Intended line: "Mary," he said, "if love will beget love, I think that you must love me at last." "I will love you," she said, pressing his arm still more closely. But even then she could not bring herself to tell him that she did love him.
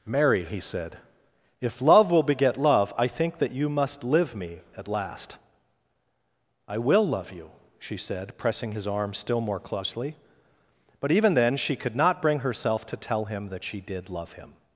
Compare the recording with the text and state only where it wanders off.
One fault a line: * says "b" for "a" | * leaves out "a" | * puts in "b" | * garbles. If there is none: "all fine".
* says "live" for "love"